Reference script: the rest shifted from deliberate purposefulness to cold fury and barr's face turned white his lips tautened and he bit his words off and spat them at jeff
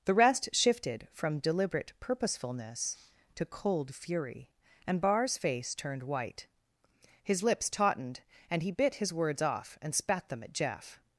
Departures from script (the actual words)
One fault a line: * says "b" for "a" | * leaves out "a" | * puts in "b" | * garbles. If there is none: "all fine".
all fine